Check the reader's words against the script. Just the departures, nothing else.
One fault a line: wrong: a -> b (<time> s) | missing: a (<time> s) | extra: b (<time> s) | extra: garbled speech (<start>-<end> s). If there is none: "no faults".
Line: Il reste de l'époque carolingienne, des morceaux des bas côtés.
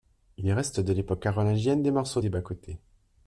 no faults